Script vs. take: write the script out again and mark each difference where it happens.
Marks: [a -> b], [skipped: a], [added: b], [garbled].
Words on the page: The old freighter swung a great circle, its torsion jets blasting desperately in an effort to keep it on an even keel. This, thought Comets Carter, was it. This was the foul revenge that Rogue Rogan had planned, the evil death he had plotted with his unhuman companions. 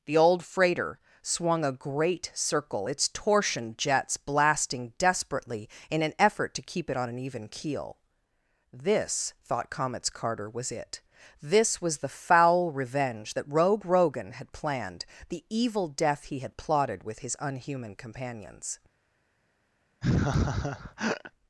The old freighter swung a great circle, its torsion jets blasting desperately in an effort to keep it on an even keel. This, thought Comets Carter, was it. This was the foul revenge that Rogue Rogan had planned, the evil death he had plotted with his unhuman companions.